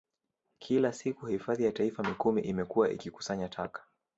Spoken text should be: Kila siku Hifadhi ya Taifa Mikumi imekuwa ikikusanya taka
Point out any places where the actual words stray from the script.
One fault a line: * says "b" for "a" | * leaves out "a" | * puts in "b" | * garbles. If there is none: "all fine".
all fine